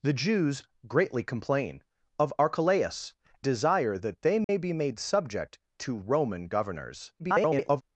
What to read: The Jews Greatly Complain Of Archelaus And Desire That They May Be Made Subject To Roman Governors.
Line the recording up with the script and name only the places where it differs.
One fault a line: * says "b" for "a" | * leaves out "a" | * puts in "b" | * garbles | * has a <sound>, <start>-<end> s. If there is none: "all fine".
* leaves out "And"
* has a dropout, 4.4-4.5 s
* garbles